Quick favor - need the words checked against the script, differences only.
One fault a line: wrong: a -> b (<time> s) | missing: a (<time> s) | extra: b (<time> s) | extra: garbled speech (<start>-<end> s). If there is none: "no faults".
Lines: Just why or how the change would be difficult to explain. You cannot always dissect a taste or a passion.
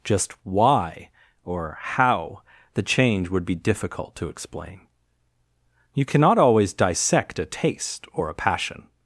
no faults